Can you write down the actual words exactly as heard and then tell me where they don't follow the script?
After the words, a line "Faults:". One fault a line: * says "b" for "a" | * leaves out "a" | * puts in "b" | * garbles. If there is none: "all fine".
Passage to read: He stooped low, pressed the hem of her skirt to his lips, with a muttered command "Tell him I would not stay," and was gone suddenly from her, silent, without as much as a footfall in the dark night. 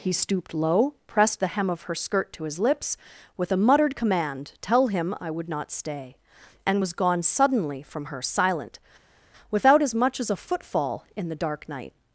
He stooped low, pressed the hem of her skirt to his lips, with a muttered command "Tell him I would not stay," and was gone suddenly from her, silent, without as much as a footfall in the dark night.
Faults:
all fine